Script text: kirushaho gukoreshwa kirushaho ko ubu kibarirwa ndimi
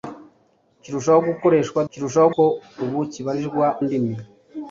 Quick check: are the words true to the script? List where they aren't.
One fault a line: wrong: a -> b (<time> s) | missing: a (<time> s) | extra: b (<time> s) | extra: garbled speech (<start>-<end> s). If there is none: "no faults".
no faults